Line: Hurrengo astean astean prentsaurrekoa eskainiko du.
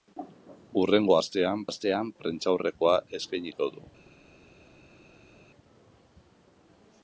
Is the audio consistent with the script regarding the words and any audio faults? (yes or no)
yes